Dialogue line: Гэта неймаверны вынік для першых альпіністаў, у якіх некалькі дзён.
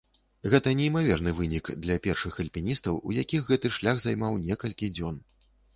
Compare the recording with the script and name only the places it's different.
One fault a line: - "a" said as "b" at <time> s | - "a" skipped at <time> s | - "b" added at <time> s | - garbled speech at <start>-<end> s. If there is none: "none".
- "гэты шлях займаў" added at 3.5 s